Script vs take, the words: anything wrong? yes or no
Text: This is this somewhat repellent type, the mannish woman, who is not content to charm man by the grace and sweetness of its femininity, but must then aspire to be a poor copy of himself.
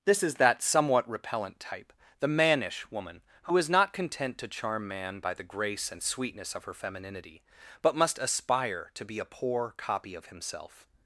yes